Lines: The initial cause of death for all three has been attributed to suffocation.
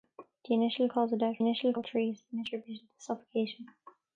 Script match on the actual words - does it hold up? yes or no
no